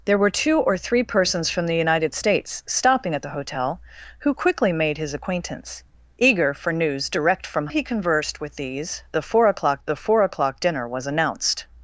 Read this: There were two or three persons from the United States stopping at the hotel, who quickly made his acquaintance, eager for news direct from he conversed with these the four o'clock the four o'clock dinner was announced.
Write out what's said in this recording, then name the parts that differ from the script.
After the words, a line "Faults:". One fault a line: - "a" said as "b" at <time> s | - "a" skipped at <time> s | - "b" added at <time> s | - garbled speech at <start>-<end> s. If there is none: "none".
There were two or three persons from the United States stopping at the hotel, who quickly made his acquaintance, eager for news direct from he conversed with these the four o'clock the four o'clock dinner was announced.
Faults:
none